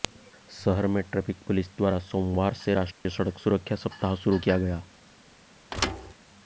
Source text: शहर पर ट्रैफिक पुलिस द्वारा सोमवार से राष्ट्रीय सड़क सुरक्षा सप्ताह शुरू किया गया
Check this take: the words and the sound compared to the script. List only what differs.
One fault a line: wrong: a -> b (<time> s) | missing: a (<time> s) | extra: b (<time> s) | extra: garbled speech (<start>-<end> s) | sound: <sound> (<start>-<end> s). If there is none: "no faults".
wrong: पर -> में (0.9 s)
sound: dropout (2.9-3.1 s)
sound: thud (5.7-6.1 s)